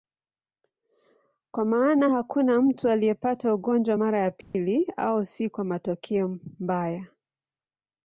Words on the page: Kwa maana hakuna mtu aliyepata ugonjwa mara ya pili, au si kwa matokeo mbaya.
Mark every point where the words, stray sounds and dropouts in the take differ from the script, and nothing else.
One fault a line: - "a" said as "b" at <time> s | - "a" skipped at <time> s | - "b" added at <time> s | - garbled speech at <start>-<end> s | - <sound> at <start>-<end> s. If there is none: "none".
- dropout at 4.4-4.5 s